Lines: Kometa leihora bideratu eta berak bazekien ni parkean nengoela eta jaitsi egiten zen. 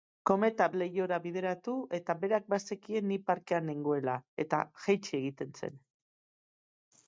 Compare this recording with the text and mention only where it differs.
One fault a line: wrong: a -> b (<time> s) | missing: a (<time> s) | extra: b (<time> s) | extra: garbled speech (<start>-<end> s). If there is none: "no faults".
no faults